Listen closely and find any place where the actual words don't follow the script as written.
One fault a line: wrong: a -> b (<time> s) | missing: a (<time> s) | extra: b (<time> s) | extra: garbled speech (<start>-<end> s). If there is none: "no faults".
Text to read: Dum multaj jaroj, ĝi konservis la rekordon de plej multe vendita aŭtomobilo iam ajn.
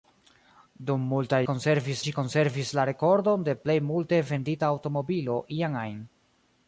wrong: jaroj -> konservis (1.5 s)